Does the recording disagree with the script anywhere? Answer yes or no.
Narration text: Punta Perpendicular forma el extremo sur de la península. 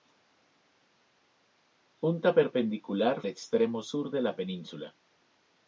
yes